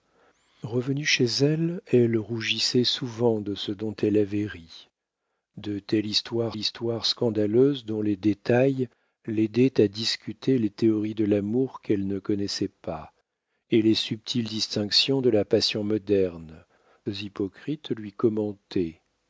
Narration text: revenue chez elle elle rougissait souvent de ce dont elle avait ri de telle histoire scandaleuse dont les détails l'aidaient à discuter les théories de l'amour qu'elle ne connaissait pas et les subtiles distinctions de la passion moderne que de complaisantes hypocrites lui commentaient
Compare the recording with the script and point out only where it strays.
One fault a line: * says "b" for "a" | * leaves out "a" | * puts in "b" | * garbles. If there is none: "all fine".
* puts in "histoire"
* leaves out "que de complaisantes"